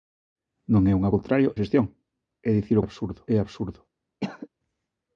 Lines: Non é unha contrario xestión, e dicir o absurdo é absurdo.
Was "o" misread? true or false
false